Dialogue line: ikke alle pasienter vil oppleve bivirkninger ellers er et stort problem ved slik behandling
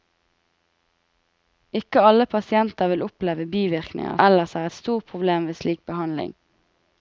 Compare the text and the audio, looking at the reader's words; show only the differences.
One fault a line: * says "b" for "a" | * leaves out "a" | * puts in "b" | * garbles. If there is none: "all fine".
all fine